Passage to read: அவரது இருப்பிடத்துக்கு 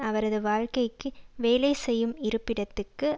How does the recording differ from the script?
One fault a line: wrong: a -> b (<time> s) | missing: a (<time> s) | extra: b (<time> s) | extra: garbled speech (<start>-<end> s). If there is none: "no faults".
extra: வாழ்க்கைக்கு வேலை செய்யும் (0.4 s)